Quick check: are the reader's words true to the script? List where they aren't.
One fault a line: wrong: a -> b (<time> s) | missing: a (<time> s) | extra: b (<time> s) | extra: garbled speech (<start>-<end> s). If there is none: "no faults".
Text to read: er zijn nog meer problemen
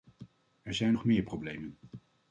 no faults